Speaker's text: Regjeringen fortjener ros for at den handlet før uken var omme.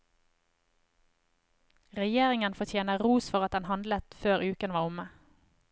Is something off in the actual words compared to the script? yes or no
no